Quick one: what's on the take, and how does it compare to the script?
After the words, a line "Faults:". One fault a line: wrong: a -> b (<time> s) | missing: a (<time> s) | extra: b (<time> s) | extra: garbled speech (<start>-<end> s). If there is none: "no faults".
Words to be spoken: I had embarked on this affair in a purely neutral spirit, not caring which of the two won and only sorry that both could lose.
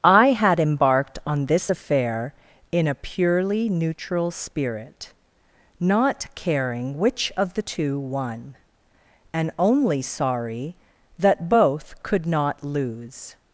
I had embarked on this affair in a purely neutral spirit, not caring which of the two won and only sorry that both could not lose.
Faults:
extra: not (12.2 s)